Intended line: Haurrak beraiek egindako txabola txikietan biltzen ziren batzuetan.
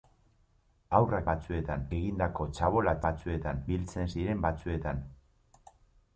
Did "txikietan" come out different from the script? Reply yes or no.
yes